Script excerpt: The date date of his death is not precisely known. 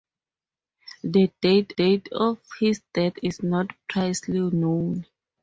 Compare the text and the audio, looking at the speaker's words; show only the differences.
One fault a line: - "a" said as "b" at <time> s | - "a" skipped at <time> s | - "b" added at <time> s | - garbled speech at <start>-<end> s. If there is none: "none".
none